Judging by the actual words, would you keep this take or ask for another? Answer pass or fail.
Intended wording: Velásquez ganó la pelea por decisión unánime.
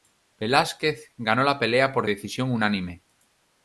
pass